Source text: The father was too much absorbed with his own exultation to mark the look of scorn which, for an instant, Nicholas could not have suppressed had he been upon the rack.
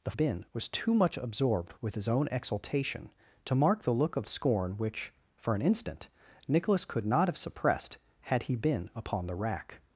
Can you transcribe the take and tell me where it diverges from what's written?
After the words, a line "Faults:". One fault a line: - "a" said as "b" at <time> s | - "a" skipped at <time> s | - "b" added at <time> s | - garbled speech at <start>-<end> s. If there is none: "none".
The been was too much absorbed with his own exultation to mark the look of scorn which, for an instant, Nicholas could not have suppressed had he been upon the rack.
Faults:
- "father" said as "been" at 0.1 s